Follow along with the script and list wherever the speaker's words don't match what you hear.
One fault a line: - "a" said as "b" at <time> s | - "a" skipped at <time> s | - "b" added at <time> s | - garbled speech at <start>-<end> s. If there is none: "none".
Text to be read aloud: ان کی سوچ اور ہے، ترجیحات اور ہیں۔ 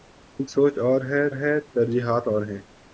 - "کی" skipped at 0.5 s
- "ہے" added at 1.3 s